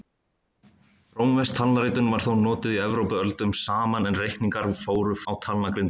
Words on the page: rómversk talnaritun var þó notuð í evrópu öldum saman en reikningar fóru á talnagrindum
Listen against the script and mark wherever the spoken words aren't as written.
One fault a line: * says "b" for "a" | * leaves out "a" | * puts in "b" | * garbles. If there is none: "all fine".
all fine